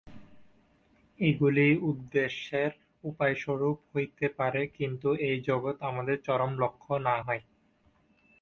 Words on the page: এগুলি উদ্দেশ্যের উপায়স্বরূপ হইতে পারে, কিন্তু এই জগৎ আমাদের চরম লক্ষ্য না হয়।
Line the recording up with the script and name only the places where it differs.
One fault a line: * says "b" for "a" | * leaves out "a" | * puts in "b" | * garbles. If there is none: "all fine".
all fine